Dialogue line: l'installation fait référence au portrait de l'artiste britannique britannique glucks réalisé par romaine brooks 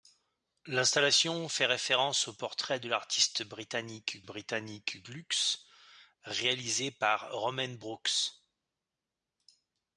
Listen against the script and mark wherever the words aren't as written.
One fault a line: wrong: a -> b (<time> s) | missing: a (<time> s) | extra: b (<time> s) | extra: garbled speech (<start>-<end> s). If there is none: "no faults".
no faults